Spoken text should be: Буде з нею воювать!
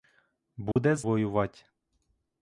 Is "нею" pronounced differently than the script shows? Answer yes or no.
yes